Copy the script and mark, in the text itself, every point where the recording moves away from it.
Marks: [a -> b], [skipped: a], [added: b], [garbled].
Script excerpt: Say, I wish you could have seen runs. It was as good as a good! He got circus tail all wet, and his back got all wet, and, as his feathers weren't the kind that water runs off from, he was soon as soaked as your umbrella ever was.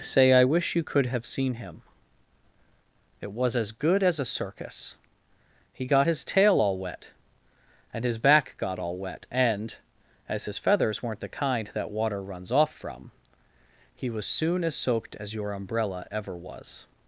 Say, I wish you could have seen [runs. -> him] It was as good as a [good! -> circus] He got [circus -> his] tail all wet, and his back got all wet, and, as his feathers weren't the kind that water runs off from, he was soon as soaked as your umbrella ever was.